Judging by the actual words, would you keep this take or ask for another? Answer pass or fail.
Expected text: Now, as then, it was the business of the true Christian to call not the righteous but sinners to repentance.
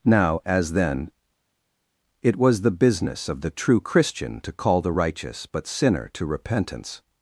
fail